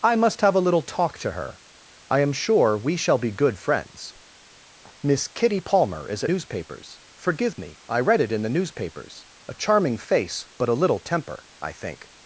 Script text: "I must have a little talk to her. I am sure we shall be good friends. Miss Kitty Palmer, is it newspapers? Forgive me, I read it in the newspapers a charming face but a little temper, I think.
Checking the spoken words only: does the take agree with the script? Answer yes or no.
yes